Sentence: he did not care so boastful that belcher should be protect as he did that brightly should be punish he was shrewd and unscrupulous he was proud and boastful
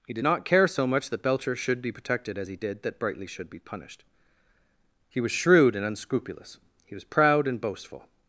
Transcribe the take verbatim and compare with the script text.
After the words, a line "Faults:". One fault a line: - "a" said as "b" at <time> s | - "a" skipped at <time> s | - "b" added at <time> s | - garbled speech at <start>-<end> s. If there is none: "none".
he did not care so much that belcher should be protected as he did that brightly should be punished he was shrewd and unscrupulous he was proud and boastful
Faults:
- "boastful" said as "much" at 0.9 s
- "protect" said as "protected" at 1.9 s
- "punish" said as "punished" at 3.6 s